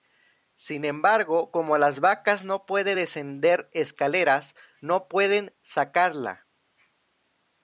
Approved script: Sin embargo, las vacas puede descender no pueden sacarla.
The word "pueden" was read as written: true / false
true